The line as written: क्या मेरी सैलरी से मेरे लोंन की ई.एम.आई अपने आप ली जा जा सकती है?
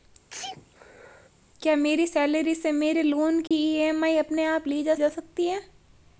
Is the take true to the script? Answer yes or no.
yes